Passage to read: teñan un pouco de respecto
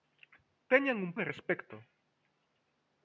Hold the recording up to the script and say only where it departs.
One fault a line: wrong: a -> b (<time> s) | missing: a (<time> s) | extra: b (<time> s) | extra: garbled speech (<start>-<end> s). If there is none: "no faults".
missing: pouco (1.1 s)